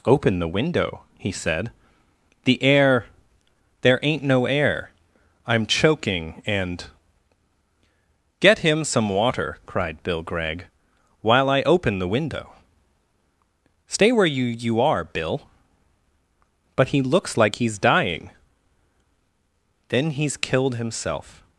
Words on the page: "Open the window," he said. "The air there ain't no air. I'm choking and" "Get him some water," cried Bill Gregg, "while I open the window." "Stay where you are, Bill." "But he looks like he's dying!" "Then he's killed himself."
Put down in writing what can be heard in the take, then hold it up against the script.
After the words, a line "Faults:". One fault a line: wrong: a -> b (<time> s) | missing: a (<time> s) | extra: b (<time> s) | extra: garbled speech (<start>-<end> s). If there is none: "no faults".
"Open the window," he said. "The air there ain't no air. I'm choking and" "Get him some water," cried Bill Gregg, "while I open the window." "Stay where you you are, Bill." "But he looks like he's dying!" "Then he's killed himself."
Faults:
extra: you (14.4 s)